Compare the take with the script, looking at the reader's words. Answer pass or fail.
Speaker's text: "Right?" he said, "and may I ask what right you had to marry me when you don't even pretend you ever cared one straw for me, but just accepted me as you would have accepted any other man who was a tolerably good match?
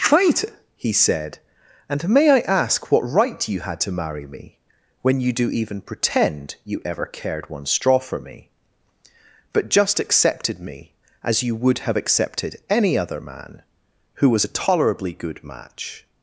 fail